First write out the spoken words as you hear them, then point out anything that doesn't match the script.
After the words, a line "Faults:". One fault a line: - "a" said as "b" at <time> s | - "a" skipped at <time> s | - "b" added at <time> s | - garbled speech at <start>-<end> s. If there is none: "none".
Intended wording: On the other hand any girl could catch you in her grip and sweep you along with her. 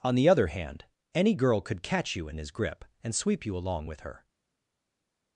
On the other hand any girl could catch you in his grip and sweep you along with her.
Faults:
- "her" said as "his" at 2.4 s